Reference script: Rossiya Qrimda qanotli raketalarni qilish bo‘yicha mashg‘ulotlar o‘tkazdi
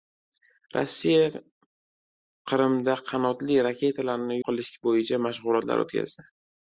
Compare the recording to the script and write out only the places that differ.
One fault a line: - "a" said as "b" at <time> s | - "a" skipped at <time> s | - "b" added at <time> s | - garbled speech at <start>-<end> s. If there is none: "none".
none